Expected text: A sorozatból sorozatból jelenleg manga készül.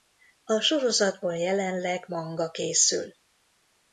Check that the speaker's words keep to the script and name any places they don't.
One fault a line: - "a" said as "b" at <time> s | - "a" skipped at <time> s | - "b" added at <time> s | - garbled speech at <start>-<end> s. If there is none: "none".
- "sorozatból" skipped at 1.4 s